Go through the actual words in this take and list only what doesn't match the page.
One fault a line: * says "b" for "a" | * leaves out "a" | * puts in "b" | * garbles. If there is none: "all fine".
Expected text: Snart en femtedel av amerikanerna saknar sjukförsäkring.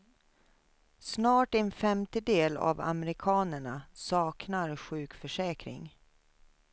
all fine